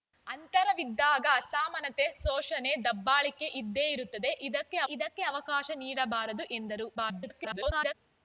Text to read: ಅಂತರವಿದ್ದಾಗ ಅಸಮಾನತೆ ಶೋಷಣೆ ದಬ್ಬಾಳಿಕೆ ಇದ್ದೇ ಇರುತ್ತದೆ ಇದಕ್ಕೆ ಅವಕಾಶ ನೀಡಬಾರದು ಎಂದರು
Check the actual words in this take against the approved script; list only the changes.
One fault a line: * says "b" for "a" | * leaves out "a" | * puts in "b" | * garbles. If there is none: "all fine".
* puts in "ಇದಕ್ಕೆ"
* garbles